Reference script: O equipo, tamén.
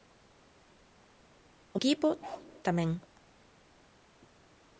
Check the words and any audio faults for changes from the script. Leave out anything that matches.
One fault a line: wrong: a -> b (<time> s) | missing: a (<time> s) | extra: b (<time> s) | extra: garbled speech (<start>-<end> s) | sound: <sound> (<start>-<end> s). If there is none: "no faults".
sound: bark (2.2-2.5 s)